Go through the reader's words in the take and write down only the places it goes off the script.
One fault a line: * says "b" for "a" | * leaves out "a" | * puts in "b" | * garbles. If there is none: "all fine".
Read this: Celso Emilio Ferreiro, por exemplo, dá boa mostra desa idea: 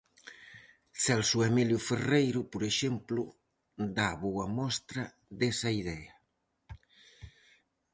all fine